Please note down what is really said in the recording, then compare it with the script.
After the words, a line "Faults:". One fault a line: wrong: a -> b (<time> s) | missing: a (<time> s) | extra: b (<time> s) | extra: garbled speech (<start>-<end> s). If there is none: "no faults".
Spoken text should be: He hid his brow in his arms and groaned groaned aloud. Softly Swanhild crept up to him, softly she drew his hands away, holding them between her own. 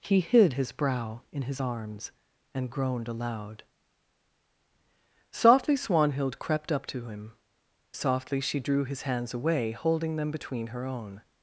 He hid his brow in his arms and groaned aloud. Softly Swanhild crept up to him, softly she drew his hands away, holding them between her own.
Faults:
missing: groaned (3.1 s)